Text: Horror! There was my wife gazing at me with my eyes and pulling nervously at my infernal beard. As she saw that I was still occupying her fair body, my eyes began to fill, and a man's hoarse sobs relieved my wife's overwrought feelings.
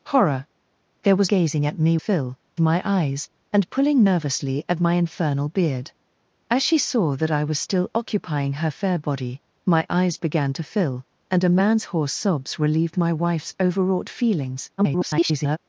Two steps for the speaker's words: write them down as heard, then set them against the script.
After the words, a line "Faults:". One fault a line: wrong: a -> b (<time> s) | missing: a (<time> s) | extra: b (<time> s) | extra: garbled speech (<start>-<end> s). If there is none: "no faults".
Horror! There was gazing at me fill my eyes and pulling nervously at my infernal beard. As she saw that I was still occupying her fair body, my eyes began to fill, and a man's hoarse sobs relieved my wife's overwrought feelings. [garbled]
Faults:
missing: my wife (1.3 s)
wrong: with -> fill (2.0 s)
extra: garbled speech (14.8-15.6 s)